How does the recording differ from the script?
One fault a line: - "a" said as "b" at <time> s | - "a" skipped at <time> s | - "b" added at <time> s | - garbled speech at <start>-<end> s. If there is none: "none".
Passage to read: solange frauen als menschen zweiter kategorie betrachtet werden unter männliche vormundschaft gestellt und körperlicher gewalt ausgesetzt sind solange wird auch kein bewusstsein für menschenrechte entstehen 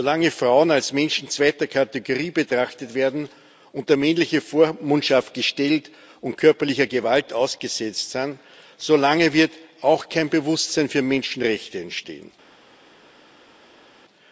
none